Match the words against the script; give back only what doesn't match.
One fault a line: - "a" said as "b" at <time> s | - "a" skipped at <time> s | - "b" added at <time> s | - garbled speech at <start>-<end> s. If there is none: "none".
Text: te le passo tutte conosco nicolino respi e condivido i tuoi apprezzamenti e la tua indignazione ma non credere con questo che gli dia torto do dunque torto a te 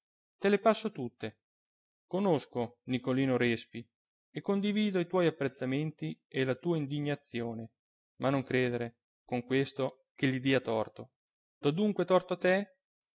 none